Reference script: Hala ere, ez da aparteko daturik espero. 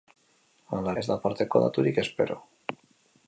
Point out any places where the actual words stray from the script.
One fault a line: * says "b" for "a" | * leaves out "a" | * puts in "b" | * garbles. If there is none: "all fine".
* leaves out "ere"